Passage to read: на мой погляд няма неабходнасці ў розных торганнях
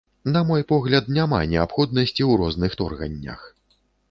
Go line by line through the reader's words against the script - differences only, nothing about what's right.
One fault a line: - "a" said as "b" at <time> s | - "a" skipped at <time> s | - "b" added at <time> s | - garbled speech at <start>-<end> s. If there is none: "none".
none